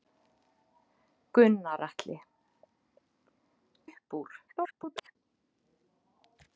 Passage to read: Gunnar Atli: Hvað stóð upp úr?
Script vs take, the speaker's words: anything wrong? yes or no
yes